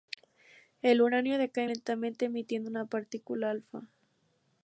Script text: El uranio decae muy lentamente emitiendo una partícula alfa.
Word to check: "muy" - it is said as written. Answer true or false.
false